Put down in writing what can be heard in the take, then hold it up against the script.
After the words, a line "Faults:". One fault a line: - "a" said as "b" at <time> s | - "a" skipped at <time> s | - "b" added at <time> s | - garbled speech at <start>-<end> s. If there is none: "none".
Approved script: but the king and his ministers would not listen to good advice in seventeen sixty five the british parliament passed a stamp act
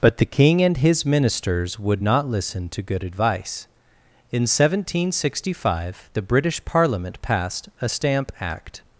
but the king and his ministers would not listen to good advice in seventeen sixty five the british parliament passed a stamp act
Faults:
none